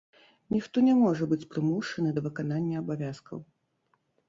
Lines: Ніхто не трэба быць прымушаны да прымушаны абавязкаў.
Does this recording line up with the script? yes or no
no